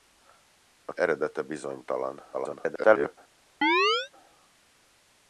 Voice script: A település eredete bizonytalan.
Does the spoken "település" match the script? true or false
false